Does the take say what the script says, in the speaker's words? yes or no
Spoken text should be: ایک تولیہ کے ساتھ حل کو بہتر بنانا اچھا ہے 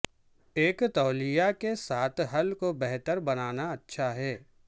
yes